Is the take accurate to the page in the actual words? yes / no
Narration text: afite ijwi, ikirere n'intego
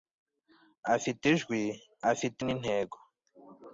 no